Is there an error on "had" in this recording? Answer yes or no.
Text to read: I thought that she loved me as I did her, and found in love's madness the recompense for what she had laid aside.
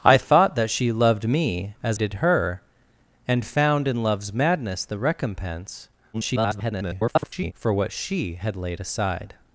no